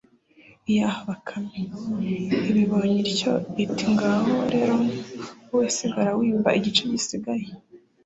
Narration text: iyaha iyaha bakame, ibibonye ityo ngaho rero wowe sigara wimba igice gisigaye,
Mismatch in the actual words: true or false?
true